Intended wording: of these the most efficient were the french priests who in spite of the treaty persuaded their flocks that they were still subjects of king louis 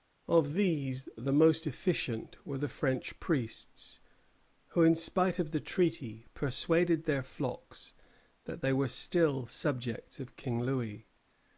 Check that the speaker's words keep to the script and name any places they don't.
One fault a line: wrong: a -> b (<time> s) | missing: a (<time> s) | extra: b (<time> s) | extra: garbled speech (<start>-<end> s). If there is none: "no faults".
no faults